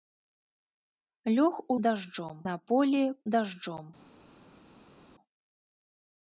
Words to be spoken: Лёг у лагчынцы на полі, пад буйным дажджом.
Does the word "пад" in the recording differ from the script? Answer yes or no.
yes